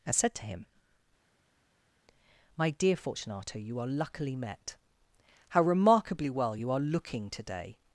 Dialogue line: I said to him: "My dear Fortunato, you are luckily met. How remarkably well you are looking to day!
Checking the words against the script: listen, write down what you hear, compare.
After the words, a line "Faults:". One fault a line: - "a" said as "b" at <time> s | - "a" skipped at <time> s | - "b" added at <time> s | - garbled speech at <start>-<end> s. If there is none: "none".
and said to him: "My dear Fortunato, you are luckily met. How remarkably well you are looking to day!
Faults:
- "I" said as "and" at 0.1 s